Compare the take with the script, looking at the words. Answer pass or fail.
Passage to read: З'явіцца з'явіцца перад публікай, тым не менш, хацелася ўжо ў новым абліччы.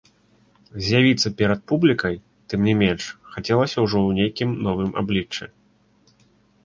fail